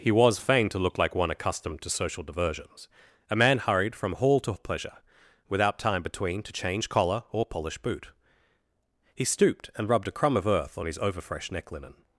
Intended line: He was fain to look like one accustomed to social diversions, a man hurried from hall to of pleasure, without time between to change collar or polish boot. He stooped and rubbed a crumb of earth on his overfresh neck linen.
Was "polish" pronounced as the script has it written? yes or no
yes